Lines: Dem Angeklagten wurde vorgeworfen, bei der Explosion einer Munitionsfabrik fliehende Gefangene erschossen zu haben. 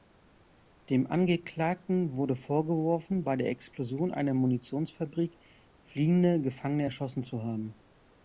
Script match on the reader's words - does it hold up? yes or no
yes